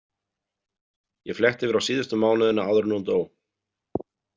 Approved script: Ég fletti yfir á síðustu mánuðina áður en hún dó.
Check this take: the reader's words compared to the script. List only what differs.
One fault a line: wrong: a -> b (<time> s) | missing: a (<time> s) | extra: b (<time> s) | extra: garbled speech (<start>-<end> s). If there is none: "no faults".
no faults